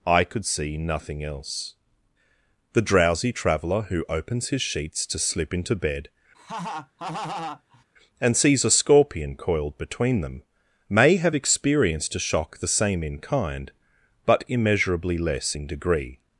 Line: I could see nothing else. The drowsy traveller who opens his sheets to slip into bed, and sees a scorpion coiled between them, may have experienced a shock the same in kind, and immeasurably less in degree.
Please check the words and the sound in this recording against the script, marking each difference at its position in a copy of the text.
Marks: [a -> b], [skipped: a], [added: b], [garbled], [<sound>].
I could see nothing else. The drowsy traveller who opens his sheets to slip into bed, [laugh] and sees a scorpion coiled between them, may have experienced a shock the same in kind, [and -> but] immeasurably less in degree.